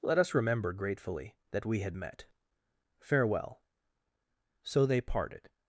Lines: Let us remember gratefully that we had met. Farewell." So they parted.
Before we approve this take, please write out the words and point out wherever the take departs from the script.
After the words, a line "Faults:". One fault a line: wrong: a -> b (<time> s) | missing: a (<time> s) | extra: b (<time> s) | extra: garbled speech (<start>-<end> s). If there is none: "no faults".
Let us remember gratefully that we had met. Farewell." So they parted.
Faults:
no faults